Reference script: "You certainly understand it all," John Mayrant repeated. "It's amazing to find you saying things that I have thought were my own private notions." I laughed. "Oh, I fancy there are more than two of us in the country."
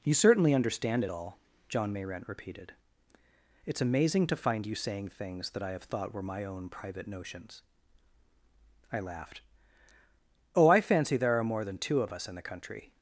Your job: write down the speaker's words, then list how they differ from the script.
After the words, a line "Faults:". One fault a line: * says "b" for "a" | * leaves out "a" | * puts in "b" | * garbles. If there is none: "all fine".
"You certainly understand it all," John Mayrant repeated. "It's amazing to find you saying things that I have thought were my own private notions." I laughed. "Oh, I fancy there are more than two of us in the country."
Faults:
all fine